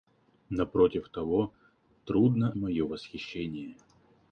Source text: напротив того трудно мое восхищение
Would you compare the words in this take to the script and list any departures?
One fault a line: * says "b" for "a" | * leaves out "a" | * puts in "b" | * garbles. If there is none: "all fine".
all fine